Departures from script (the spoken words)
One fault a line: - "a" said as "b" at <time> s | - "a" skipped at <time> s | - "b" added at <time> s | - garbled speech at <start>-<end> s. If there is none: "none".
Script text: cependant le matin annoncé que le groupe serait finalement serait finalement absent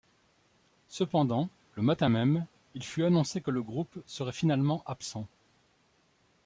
- "même il fut" added at 2.1 s
- "serait finalement" skipped at 4.8 s